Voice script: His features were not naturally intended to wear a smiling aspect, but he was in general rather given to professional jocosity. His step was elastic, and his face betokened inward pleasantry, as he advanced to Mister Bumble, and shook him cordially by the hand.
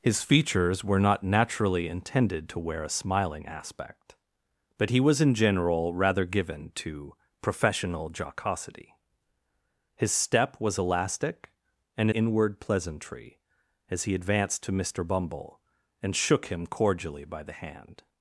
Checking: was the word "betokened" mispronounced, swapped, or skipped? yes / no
yes